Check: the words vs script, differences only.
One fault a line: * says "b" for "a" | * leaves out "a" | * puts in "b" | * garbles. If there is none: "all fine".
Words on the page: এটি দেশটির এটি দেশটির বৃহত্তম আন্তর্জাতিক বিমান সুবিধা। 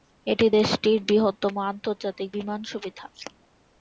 * leaves out "এটি দেশটির"